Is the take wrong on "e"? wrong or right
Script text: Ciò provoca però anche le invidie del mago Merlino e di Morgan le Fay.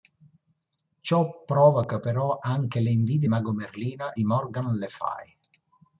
wrong